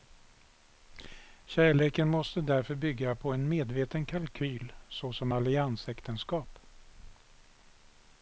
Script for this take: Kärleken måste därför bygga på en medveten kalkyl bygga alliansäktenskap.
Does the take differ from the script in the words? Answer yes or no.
yes